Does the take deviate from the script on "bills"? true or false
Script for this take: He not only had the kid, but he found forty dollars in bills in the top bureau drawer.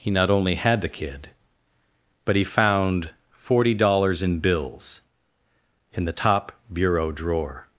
false